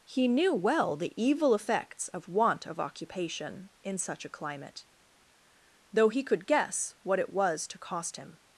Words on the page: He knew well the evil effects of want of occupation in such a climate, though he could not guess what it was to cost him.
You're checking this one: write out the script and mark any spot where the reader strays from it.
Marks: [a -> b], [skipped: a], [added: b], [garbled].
He knew well the evil effects of want of occupation in such a climate, though he could [skipped: not] guess what it was to cost him.